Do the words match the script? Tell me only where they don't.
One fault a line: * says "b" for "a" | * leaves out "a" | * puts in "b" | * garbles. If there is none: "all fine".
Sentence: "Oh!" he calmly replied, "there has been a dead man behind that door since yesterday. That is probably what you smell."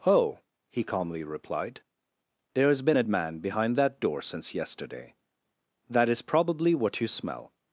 * leaves out "dead"